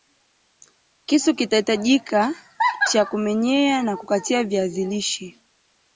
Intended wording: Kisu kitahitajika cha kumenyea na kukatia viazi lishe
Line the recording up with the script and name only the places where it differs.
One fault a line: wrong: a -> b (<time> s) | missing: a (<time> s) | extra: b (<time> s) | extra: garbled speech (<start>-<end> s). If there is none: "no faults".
no faults